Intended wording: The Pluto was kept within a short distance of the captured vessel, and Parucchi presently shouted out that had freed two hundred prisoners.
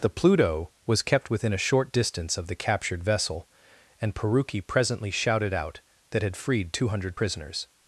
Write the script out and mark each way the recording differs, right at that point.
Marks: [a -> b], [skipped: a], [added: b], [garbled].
The Pluto was kept within a short distance of the captured vessel, and Parucchi presently shouted out that had freed two hundred prisoners.